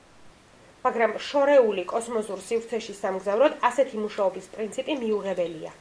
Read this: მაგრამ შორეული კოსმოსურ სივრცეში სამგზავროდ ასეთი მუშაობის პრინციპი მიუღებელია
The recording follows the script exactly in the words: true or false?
true